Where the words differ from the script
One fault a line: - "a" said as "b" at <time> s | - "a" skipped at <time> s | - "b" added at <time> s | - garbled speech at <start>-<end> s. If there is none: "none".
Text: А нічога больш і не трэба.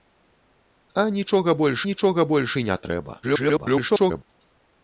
- "нічога больш" added at 1.9 s
- garbled speech at 3.2-4.2 s